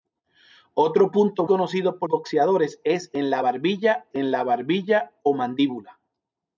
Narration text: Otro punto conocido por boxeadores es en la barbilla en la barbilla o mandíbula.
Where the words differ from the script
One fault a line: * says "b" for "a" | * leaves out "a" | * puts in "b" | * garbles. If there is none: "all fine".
all fine